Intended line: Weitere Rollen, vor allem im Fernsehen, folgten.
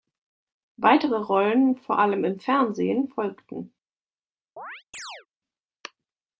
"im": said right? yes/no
yes